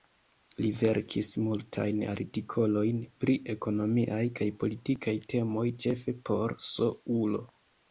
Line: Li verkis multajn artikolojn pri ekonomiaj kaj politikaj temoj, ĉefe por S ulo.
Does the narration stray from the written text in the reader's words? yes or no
no